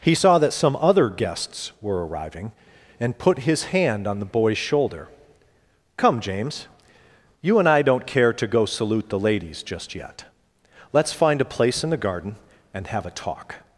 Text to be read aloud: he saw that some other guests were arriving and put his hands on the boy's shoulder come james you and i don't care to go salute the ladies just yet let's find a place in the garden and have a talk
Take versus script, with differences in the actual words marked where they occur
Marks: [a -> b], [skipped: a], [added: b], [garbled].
he saw that some other guests were arriving and put his [hands -> hand] on the boy's shoulder come james you and i don't care to go salute the ladies just yet let's find a place in the garden and have a talk